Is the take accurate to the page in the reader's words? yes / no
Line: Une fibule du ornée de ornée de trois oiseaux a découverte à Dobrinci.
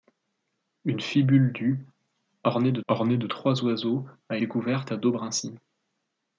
yes